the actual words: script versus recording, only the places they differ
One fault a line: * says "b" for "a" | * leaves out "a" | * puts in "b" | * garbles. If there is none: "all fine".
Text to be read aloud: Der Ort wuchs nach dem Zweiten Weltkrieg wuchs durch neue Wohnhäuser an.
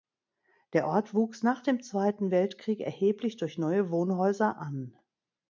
* says "erheblich" for "wuchs"